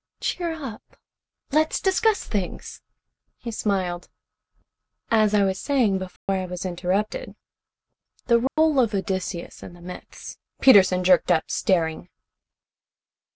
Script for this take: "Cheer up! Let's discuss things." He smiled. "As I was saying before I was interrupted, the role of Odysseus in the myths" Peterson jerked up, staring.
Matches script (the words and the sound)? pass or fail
fail